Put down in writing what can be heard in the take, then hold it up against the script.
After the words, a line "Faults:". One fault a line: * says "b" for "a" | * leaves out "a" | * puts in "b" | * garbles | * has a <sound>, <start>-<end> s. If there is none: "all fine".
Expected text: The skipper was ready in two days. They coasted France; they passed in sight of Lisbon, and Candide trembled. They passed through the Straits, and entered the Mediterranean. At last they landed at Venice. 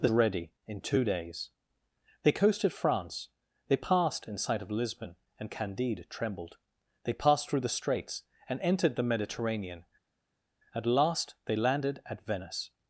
The ready in two days. They coasted France; they passed in sight of Lisbon, and Candide trembled. They passed through the Straits, and entered the Mediterranean. At last they landed at Venice.
Faults:
* leaves out "skipper was"